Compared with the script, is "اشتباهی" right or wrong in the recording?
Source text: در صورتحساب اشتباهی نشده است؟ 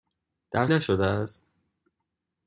wrong